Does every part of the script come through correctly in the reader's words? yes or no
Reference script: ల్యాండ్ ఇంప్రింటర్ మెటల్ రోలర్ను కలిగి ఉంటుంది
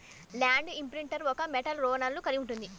no